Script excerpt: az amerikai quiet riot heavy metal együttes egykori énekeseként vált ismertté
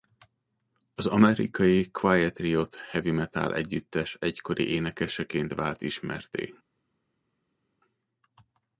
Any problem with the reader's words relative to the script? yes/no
no